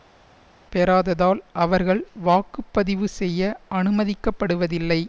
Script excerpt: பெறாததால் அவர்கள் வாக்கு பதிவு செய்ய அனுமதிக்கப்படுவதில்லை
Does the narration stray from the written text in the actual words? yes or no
no